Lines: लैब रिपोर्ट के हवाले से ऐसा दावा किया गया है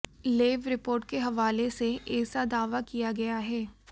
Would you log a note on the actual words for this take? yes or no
no